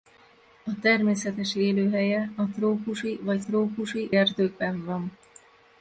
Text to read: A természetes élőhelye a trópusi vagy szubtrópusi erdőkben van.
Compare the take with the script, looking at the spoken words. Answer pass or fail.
fail